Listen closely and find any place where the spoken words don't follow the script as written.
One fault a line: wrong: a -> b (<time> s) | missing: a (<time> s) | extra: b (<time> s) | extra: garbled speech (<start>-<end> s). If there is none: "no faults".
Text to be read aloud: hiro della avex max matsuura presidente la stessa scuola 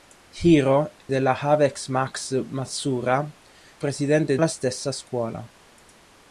no faults